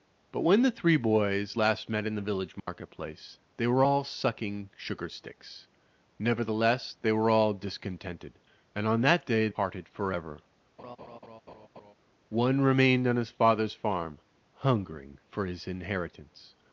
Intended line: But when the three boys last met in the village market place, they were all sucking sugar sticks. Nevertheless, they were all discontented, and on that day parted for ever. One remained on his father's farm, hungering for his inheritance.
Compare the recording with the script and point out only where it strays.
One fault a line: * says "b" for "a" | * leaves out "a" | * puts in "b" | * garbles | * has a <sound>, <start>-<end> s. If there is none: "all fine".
* has a dropout, 2.6-2.7 s
* has a laugh, 10.8-11.9 s